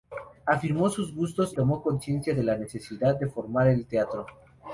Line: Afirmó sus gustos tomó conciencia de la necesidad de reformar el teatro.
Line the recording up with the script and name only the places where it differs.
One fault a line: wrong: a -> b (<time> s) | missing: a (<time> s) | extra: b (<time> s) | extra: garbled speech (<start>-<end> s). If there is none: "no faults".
no faults